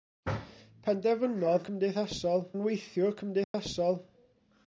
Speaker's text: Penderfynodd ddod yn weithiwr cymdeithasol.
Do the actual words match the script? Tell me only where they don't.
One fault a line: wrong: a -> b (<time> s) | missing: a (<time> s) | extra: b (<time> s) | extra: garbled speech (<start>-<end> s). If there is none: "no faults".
wrong: ddod -> cymdeithasol (1.7 s)